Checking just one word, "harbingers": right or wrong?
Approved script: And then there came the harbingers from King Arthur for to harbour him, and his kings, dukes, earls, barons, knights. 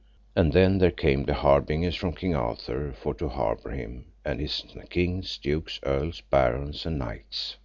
right